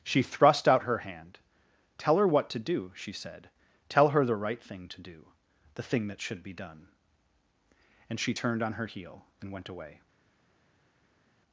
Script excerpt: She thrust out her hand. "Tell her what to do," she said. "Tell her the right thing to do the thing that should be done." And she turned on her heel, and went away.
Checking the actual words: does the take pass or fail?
pass